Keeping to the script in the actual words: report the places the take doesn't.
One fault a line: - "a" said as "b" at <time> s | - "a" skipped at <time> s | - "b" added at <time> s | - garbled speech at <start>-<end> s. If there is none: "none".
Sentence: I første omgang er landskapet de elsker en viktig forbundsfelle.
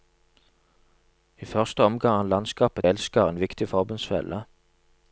- "de" skipped at 2.9 s